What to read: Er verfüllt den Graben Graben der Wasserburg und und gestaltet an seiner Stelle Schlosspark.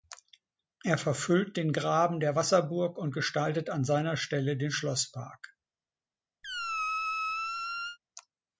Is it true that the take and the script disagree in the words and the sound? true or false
true